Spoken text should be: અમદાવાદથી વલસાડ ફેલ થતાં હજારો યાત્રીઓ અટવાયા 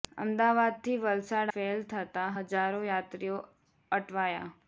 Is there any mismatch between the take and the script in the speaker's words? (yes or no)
no